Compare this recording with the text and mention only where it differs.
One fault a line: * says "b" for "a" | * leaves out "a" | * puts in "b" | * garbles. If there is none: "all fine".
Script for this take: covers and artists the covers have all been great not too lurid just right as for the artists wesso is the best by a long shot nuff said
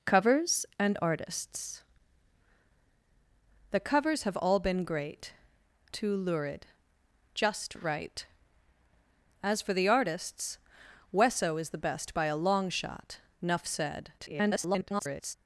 * leaves out "not"
* garbles